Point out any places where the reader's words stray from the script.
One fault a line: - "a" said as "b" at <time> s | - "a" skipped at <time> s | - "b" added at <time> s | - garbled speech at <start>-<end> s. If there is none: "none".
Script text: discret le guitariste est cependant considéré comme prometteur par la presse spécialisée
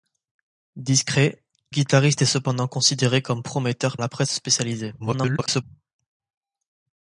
- "le" skipped at 1.4 s
- "par" skipped at 4.0 s
- garbled speech at 5.0-5.6 s